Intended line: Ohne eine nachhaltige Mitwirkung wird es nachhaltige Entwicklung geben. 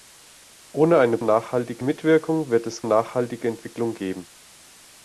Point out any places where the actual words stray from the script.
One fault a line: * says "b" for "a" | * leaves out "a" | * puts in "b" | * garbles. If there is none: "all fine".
all fine